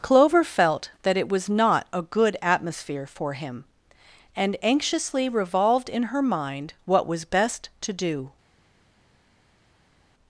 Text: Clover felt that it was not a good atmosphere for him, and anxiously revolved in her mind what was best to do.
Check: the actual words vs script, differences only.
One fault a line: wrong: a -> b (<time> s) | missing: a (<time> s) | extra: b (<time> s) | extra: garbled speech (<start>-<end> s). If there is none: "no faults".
no faults